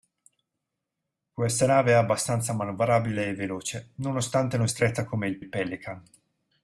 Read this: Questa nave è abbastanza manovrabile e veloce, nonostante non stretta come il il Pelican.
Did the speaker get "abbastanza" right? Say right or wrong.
right